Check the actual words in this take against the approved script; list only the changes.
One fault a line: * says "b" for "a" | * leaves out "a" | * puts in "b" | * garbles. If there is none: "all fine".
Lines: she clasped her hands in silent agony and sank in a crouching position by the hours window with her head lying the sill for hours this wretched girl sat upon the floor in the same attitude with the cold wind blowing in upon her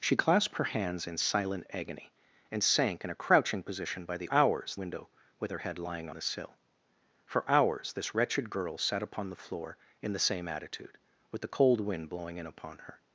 all fine